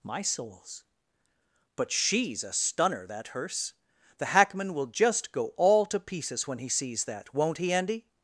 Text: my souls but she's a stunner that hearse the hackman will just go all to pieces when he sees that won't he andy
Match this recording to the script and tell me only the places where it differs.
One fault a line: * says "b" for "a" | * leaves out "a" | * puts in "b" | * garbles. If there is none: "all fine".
all fine